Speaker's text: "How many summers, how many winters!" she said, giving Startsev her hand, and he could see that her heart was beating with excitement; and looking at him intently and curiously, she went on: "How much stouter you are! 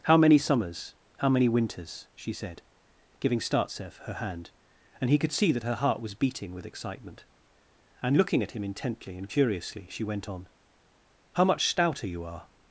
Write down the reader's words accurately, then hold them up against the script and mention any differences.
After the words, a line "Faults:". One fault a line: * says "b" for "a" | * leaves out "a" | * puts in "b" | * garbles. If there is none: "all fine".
"How many summers, how many winters!" she said, giving Startsev her hand, and he could see that her heart was beating with excitement; and looking at him intently and curiously, she went on: "How much stouter you are!
Faults:
all fine